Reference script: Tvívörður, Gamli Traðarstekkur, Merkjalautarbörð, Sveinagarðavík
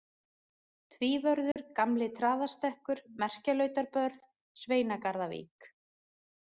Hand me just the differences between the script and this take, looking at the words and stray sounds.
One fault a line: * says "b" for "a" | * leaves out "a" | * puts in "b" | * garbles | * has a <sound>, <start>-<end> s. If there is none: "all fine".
* has a dropout, 1.5-1.6 s